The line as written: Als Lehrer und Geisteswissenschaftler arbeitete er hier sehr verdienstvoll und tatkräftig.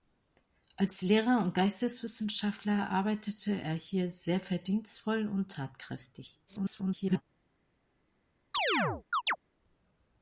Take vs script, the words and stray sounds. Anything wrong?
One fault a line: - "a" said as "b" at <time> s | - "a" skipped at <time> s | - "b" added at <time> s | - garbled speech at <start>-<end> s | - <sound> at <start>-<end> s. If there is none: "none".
- garbled speech at 6.5-7.2 s
- chirp at 8.5-9.4 s